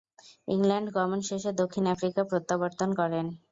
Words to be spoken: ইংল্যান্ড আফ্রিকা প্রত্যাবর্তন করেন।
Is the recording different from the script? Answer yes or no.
yes